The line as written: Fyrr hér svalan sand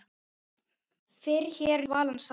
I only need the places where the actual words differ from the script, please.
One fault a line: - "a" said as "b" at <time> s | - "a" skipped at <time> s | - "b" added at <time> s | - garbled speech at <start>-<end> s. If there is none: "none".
none